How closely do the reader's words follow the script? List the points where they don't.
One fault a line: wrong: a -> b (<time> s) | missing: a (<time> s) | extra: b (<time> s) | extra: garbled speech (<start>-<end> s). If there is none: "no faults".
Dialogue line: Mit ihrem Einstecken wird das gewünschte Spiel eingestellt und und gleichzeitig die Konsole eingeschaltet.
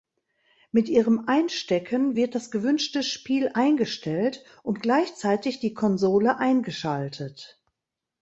missing: und (4.8 s)